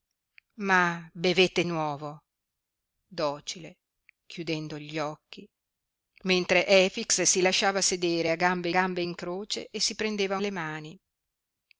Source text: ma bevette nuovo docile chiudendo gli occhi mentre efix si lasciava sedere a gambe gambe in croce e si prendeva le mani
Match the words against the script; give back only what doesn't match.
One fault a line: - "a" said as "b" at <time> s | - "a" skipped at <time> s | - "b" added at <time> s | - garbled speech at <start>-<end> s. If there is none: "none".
none